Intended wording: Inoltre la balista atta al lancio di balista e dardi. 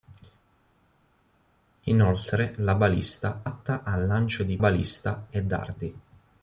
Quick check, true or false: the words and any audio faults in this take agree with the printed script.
true